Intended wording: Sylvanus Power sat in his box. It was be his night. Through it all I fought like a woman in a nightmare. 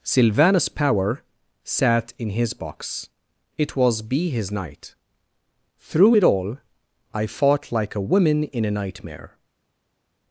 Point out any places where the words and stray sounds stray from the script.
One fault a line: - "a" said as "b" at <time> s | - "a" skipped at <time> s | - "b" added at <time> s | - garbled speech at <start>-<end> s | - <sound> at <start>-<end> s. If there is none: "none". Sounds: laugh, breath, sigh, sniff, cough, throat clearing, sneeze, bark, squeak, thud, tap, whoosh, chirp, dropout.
none